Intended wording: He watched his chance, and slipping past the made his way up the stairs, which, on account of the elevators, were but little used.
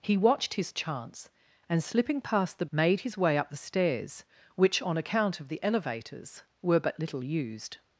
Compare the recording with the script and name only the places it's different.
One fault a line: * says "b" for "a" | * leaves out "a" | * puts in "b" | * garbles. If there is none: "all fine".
all fine